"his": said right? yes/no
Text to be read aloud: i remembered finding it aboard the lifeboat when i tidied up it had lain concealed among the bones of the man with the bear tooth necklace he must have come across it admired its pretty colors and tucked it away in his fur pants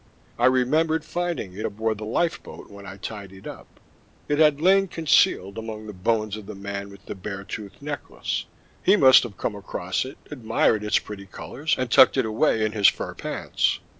yes